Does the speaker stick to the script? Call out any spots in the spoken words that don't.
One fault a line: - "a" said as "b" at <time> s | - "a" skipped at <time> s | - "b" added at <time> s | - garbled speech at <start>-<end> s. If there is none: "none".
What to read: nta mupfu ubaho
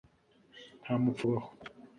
none